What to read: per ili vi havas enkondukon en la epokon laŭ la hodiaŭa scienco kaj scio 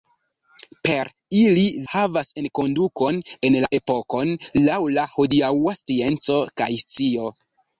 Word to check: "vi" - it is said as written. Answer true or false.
false